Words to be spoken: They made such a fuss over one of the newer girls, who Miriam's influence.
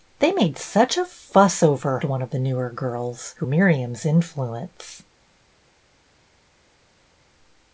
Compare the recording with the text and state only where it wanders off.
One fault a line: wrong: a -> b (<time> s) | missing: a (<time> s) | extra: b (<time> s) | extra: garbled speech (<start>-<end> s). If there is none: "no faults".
no faults